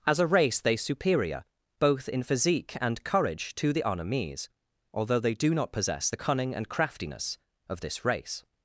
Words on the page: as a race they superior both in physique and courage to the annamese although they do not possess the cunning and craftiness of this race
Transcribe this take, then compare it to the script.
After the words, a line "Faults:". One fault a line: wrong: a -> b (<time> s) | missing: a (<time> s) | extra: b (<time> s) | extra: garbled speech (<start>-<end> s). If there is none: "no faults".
as a race they superior both in physique and courage to the annamese although they do not possess the cunning and craftiness of this race
Faults:
no faults